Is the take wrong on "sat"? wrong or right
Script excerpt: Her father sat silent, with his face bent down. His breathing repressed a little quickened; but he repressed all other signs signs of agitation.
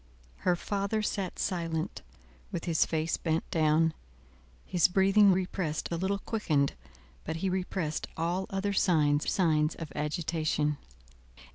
right